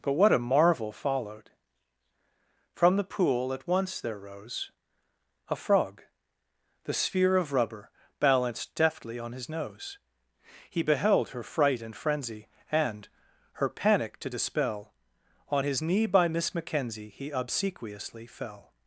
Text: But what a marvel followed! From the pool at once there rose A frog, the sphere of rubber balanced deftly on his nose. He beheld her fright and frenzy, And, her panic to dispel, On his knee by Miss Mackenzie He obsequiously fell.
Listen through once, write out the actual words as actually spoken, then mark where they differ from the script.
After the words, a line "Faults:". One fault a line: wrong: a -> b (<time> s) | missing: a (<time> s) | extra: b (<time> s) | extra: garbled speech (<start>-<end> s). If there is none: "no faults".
But what a marvel followed! From the pool at once there rose A frog, the sphere of rubber balanced deftly on his nose. He beheld her fright and frenzy, And, her panic to dispel, On his knee by Miss Mackenzie He obsequiously fell.
Faults:
no faults